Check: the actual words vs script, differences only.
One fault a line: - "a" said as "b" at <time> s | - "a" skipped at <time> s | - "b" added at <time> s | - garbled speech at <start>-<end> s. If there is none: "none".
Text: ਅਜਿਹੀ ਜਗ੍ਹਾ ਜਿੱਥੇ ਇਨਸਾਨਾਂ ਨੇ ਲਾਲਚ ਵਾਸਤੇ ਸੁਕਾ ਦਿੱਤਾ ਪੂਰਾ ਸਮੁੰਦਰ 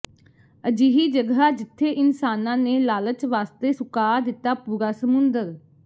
none